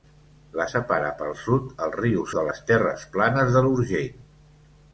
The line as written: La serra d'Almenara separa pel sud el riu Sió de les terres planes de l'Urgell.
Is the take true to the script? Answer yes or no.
no